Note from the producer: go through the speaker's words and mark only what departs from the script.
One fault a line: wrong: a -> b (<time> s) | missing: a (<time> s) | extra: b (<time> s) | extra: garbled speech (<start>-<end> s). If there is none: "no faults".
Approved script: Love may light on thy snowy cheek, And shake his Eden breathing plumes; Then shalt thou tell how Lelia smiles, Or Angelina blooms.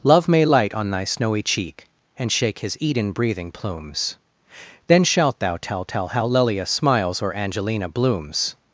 extra: tell (5.8 s)